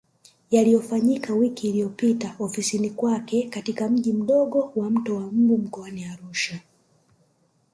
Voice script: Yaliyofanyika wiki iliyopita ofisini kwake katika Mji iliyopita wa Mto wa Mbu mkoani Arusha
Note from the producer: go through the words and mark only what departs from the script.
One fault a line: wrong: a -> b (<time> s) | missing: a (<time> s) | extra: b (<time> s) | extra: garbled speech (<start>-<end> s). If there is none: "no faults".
wrong: iliyopita -> mdogo (4.1 s)